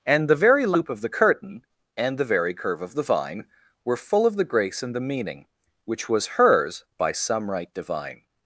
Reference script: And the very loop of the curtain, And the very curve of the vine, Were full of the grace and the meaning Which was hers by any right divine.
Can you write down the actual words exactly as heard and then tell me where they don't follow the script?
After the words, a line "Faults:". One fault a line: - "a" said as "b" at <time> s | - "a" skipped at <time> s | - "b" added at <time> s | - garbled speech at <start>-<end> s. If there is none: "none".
And the very loop of the curtain, And the very curve of the vine, Were full of the grace and the meaning Which was hers by some right divine.
Faults:
- "any" said as "some" at 7.1 s